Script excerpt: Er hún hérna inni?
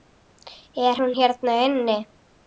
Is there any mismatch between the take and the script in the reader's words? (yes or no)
no